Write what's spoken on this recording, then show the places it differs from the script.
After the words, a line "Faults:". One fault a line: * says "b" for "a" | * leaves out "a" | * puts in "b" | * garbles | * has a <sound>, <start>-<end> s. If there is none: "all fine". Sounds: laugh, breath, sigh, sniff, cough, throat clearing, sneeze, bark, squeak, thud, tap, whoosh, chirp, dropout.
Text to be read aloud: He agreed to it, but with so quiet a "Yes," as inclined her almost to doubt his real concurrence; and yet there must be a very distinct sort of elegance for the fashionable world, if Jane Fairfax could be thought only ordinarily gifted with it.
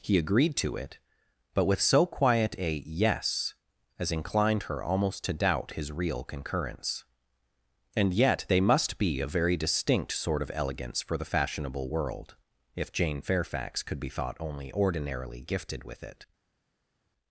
He agreed to it, but with so quiet a "Yes," as inclined her almost to doubt his real concurrence; and yet they must be a very distinct sort of elegance for the fashionable world, if Jane Fairfax could be thought only ordinarily gifted with it.
Faults:
* says "they" for "there"